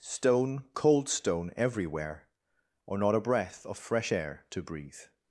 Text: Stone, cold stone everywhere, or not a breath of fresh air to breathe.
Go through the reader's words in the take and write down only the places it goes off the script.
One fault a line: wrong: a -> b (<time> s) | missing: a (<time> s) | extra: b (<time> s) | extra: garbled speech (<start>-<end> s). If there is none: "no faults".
no faults